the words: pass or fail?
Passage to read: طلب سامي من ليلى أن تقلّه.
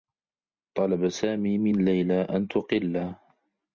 pass